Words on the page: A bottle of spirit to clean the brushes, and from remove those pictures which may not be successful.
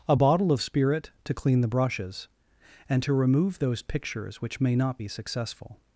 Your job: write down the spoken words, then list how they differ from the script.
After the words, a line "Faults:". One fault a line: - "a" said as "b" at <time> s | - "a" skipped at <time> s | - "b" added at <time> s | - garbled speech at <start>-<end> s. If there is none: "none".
A bottle of spirit to clean the brushes, and to remove those pictures which may not be successful.
Faults:
- "from" said as "to" at 3.0 s